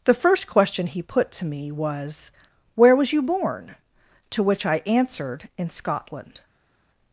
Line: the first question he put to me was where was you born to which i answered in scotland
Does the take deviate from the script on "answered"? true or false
false